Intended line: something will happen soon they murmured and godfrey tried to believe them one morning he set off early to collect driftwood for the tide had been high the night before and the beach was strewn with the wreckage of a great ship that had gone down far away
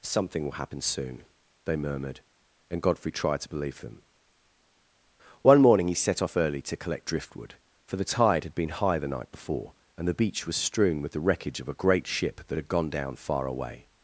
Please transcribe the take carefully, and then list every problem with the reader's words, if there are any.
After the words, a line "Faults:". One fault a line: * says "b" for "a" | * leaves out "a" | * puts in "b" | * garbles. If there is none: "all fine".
something will happen soon they murmured and godfrey tried to believe them one morning he set off early to collect driftwood for the tide had been high the night before and the beach was strewn with the wreckage of a great ship that had gone down far away
Faults:
all fine